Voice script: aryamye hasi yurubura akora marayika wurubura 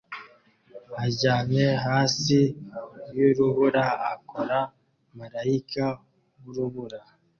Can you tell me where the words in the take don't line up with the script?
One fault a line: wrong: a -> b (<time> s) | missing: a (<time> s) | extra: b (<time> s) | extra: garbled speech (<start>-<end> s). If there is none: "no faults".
no faults